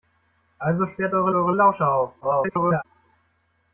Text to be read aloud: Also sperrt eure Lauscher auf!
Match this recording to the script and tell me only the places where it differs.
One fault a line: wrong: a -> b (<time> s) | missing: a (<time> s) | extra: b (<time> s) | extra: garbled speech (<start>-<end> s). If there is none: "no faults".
extra: eure (1.3 s)
extra: garbled speech (2.2-2.9 s)